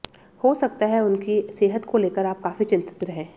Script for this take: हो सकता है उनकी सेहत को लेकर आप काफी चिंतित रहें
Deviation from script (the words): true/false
false